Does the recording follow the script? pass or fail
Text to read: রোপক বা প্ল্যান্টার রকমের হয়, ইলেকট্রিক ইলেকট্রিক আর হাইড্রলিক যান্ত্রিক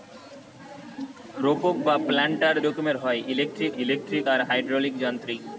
pass